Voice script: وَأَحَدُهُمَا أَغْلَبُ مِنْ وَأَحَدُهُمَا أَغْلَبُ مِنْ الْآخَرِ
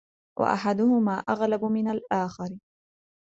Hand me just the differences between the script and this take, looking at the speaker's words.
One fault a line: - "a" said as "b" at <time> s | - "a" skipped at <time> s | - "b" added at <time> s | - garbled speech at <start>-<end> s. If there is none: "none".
- "وَأَحَدُهُمَا أَغْلَبُ مِنْ" skipped at 1.9 s